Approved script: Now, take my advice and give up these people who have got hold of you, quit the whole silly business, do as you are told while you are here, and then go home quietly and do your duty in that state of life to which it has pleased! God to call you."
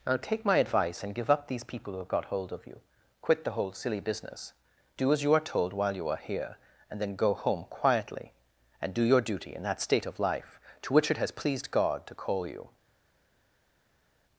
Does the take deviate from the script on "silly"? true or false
false